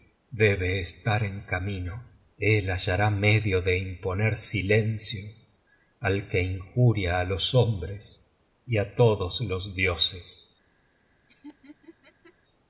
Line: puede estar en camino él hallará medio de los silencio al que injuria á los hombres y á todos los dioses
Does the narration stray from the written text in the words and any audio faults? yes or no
yes